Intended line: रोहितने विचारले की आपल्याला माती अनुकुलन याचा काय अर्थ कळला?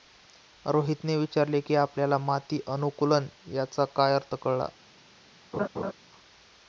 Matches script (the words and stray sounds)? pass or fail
fail